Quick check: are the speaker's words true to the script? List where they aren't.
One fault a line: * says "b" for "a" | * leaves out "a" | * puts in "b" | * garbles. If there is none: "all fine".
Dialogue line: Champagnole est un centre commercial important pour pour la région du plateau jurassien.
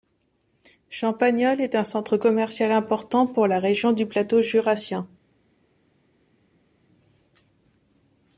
* leaves out "pour"